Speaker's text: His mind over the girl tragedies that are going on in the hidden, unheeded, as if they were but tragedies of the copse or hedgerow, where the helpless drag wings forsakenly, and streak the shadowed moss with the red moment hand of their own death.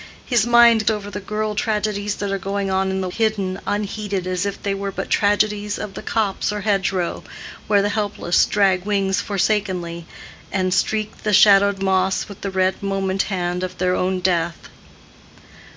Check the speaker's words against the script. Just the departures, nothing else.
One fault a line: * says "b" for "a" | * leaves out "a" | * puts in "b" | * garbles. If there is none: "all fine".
all fine